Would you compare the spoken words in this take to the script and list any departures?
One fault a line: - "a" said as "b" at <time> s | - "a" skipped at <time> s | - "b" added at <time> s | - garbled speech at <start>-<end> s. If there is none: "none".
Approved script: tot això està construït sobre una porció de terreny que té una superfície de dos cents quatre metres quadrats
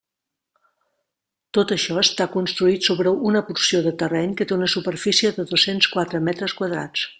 none